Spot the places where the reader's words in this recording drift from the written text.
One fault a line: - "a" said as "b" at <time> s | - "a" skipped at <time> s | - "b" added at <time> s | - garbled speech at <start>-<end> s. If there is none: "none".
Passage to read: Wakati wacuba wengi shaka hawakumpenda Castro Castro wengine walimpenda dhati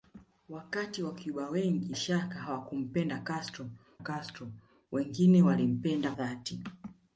none